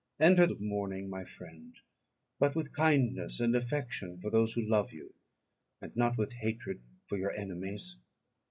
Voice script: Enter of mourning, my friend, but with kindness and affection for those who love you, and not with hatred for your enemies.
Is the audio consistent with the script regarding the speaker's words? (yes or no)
yes